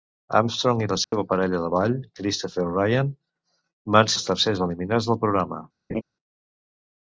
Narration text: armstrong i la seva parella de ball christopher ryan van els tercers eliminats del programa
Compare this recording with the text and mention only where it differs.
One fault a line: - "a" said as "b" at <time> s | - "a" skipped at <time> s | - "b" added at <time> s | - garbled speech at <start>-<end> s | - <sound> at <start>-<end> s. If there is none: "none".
- dropout at 1.0-1.1 s
- laugh at 5.9-6.0 s